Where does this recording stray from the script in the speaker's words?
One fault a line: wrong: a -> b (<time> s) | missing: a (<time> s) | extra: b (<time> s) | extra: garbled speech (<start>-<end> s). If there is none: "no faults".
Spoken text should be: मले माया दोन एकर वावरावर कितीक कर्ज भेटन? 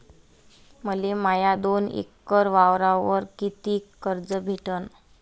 no faults